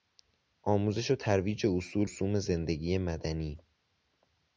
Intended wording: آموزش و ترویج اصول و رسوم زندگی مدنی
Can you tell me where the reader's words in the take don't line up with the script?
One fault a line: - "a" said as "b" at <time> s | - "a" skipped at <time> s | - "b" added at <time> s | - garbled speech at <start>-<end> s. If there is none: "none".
- "و" skipped at 2.1 s